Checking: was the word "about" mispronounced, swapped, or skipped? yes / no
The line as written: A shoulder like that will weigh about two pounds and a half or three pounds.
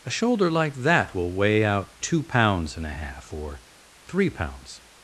yes